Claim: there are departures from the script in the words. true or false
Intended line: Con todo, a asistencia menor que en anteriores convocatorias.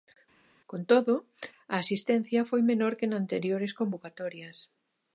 true